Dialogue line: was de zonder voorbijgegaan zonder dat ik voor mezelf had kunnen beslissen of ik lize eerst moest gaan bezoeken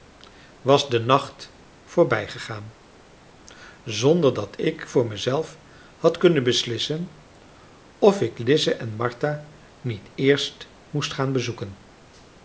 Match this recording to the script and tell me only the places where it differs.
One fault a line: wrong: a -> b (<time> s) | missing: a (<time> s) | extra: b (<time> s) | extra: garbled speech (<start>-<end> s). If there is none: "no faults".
wrong: zonder -> nacht (1.0 s)
extra: en martha niet (8.7 s)